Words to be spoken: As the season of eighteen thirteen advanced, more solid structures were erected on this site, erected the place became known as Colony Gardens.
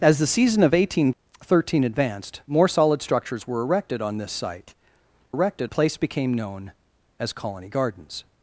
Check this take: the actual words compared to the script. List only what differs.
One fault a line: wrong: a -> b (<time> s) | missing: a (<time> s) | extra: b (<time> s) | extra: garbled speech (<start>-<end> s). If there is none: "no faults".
no faults